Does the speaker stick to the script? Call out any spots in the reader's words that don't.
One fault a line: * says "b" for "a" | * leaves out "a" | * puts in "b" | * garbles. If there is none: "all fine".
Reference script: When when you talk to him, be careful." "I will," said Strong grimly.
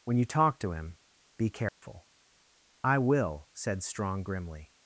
* leaves out "when"